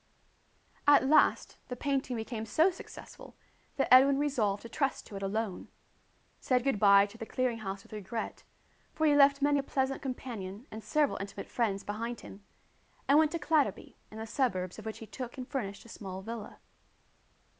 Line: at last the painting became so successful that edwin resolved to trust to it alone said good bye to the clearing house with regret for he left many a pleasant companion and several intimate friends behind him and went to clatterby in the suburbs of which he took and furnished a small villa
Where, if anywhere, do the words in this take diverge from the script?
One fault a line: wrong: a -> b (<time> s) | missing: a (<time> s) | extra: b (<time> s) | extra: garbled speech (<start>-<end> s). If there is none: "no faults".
no faults